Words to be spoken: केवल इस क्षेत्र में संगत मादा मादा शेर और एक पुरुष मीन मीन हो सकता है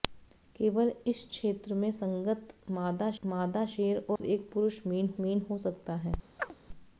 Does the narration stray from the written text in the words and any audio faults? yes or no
yes